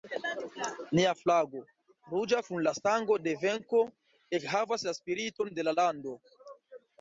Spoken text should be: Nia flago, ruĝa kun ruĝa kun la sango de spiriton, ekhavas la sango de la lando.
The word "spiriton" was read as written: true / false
false